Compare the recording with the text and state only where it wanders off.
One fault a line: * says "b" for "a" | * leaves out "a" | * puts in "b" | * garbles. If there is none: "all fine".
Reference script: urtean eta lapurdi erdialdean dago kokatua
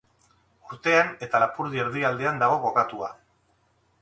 all fine